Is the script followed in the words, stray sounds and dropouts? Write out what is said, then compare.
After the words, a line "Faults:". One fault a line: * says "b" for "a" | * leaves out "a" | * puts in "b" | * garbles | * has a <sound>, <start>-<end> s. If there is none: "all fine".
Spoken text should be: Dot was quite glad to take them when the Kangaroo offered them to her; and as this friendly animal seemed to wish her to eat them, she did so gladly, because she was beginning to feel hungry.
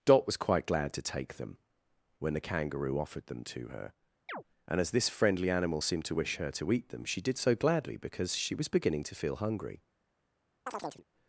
Dot was quite glad to take them when the Kangaroo offered them to her; and as this friendly animal seemed to wish her to eat them, she did so gladly, because she was beginning to feel hungry.
Faults:
* has a chirp, 4.3-4.4 s
* has a chirp, 10.7-11.0 s